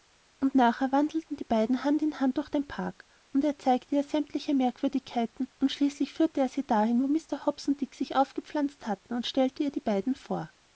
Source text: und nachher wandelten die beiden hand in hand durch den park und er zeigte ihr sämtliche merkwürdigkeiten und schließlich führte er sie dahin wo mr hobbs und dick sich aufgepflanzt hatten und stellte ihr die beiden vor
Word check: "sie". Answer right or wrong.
right